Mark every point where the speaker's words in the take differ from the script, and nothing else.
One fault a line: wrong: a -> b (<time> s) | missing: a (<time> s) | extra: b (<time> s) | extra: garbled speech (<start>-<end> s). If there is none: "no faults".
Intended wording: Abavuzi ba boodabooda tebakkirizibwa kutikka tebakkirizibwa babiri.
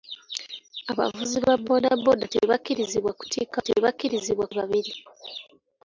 no faults